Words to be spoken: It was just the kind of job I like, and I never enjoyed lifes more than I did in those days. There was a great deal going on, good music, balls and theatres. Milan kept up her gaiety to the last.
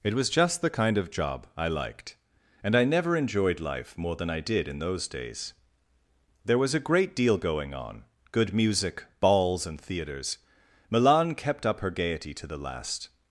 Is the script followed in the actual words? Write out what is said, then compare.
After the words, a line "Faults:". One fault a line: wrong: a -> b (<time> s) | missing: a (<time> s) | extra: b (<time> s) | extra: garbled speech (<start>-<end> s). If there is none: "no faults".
It was just the kind of job I liked, and I never enjoyed life more than I did in those days. There was a great deal going on, good music, balls and theatres. Milan kept up her gaiety to the last.
Faults:
wrong: like -> liked (1.7 s)
wrong: lifes -> life (3.6 s)